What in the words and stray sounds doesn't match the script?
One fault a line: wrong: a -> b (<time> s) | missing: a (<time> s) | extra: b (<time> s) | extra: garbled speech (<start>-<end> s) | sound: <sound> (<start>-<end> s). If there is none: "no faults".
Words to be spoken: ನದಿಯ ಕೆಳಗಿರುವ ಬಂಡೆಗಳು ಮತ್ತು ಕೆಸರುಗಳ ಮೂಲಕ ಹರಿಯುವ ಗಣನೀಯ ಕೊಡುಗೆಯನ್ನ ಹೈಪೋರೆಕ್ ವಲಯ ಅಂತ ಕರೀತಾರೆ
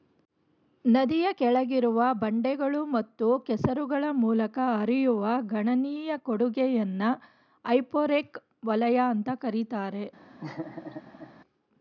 sound: laugh (10.4-11.3 s)